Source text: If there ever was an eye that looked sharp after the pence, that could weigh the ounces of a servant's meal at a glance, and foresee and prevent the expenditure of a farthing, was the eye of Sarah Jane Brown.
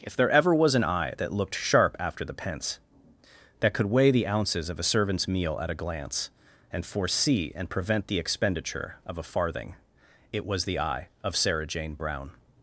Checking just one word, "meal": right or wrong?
right